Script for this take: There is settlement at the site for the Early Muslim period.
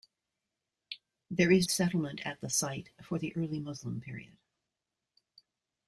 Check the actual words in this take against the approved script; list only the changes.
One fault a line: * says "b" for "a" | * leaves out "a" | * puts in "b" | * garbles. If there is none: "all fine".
all fine